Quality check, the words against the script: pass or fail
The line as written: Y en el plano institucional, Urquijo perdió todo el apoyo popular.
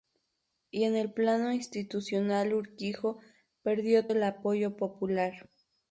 fail